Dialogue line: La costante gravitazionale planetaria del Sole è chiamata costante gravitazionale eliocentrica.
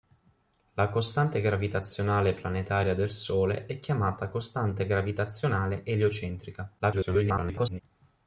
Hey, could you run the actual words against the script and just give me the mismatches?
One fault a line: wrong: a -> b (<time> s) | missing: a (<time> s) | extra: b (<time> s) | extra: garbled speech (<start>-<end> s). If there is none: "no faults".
extra: garbled speech (6.8-7.8 s)